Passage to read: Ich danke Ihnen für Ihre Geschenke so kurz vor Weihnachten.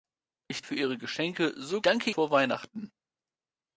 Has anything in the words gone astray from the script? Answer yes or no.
yes